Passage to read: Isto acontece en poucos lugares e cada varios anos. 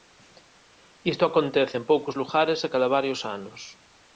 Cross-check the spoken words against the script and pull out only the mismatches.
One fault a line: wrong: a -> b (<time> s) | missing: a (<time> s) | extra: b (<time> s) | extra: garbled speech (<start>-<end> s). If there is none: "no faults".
no faults